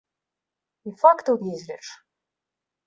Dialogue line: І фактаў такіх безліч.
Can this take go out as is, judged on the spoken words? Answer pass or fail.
fail